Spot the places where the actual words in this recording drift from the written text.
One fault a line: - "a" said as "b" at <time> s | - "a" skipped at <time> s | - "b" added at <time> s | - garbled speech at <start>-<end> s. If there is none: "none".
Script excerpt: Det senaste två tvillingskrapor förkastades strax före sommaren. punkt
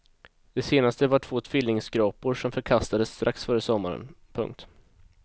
- "var" added at 1.1 s
- "som" added at 2.3 s